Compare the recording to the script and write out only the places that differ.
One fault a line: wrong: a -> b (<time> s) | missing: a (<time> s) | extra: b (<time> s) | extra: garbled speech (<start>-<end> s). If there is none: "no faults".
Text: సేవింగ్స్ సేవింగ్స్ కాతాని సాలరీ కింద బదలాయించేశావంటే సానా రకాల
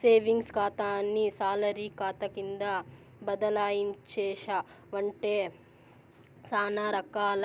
missing: సేవింగ్స్ (0.5 s)
extra: కాతా (2.0 s)